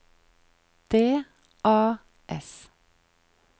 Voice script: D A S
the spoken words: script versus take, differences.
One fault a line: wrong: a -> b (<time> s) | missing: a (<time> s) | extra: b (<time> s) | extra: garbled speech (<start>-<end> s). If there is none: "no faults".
no faults